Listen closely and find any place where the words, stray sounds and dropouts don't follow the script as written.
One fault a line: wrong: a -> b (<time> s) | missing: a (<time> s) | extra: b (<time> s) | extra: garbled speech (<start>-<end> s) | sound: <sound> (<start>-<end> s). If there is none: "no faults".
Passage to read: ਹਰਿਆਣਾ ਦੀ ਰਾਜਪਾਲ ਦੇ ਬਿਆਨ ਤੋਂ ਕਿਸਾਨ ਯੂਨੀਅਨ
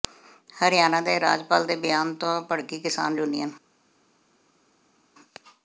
wrong: ਦੀ -> ਦੇ (1.0 s)
extra: ਭੜਕੀ (2.4 s)